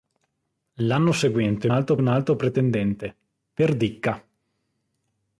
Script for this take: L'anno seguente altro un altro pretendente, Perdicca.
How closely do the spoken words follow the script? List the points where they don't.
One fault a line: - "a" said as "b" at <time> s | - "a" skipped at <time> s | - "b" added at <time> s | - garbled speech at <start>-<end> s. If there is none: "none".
none